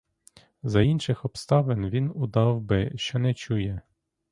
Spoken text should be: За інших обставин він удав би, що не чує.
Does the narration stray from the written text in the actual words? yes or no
no